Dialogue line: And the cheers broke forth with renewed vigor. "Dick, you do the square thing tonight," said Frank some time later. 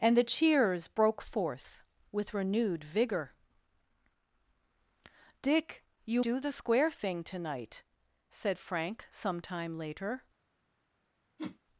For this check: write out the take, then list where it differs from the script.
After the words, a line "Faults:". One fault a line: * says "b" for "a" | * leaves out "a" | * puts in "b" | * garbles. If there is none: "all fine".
And the cheers broke forth with renewed vigor. "Dick, you do the square thing tonight," said Frank some time later.
Faults:
all fine